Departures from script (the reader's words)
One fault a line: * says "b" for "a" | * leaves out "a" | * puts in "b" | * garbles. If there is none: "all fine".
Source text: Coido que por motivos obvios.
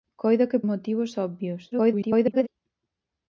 * leaves out "por"
* garbles